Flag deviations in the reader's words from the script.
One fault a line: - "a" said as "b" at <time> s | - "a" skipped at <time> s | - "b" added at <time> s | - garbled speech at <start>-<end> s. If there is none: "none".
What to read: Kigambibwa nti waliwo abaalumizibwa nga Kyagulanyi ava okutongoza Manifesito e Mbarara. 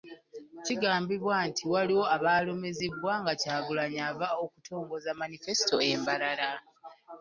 none